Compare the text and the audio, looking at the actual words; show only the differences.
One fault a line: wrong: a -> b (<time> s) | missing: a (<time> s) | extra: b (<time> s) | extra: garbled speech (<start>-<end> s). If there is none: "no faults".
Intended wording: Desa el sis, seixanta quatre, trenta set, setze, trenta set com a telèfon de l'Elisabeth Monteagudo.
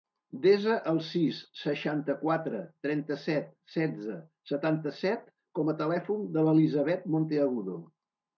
wrong: trenta -> setanta (4.5 s)